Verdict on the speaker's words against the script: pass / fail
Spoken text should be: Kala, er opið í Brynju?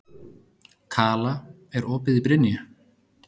pass